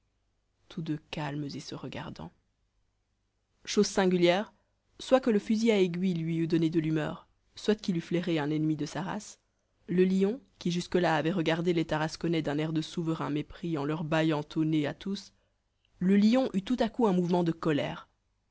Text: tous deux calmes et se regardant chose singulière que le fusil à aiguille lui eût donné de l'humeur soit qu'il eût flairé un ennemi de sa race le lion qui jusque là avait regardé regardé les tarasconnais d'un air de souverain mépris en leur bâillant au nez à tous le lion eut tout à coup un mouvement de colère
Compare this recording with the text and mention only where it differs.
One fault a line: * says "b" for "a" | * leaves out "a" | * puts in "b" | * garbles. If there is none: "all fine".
* puts in "soit"
* leaves out "regardé"